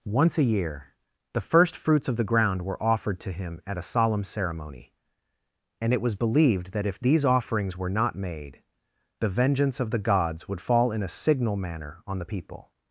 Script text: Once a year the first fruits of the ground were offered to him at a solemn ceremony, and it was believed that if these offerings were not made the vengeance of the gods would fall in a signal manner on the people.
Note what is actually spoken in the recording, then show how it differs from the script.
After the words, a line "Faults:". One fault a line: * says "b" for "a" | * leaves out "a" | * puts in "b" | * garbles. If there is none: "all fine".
Once a year the first fruits of the ground were offered to him at a solemn ceremony, and it was believed that if these offerings were not made the vengeance of the gods would fall in a signal manner on the people.
Faults:
all fine